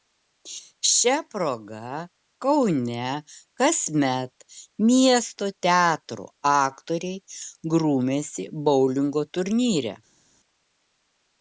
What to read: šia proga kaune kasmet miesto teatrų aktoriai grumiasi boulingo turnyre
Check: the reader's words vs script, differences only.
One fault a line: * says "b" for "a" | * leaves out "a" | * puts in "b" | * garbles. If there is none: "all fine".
all fine